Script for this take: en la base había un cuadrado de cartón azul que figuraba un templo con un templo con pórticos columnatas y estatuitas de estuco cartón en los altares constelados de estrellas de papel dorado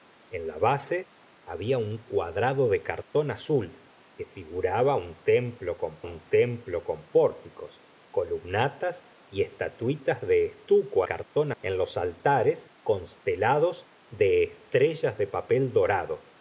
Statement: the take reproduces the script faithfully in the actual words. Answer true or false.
true